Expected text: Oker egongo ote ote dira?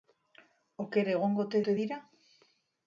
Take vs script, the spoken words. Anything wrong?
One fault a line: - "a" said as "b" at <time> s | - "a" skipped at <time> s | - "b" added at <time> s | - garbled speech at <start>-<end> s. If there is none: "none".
none